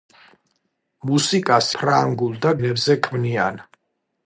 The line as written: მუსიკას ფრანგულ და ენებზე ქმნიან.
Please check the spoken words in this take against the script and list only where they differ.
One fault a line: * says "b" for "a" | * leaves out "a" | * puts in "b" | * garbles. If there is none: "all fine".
all fine